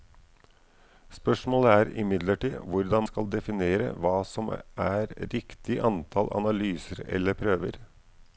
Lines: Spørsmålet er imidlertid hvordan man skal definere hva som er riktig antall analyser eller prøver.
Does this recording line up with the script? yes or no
no